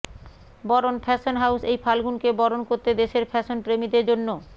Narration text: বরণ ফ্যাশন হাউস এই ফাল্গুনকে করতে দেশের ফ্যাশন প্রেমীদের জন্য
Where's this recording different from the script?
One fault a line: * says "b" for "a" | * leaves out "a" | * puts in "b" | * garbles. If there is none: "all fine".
* puts in "বরণ"